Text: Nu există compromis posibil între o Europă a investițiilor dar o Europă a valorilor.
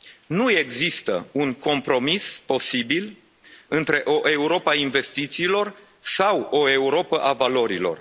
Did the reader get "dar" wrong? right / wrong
wrong